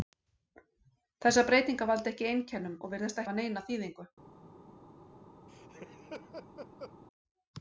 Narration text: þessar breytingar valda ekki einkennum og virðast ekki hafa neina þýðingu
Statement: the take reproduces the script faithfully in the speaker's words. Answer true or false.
false